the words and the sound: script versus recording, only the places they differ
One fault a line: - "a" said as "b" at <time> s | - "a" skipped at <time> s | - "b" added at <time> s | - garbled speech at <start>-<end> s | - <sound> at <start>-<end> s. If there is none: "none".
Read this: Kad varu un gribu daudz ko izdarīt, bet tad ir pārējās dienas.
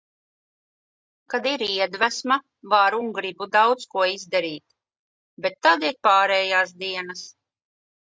- "ir iedvesma" added at 1.5 s